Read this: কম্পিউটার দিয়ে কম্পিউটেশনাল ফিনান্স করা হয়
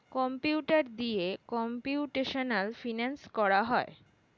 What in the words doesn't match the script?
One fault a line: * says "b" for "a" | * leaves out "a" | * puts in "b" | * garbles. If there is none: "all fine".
all fine